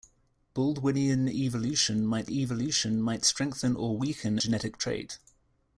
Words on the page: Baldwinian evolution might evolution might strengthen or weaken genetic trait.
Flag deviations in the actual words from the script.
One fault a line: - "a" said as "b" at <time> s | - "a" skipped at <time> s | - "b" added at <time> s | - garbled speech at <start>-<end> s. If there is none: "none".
none